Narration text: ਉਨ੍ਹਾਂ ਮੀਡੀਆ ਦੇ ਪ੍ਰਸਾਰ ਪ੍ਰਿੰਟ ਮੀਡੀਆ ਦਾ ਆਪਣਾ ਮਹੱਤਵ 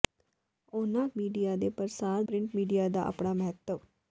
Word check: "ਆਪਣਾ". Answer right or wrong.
right